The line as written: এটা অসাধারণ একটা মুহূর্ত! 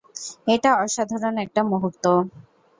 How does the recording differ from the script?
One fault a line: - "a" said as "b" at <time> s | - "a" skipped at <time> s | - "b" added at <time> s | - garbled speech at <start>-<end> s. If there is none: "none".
none